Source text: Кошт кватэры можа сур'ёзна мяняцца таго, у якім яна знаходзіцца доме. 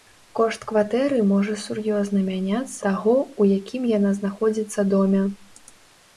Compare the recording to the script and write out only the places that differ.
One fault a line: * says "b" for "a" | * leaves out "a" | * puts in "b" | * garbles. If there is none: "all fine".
all fine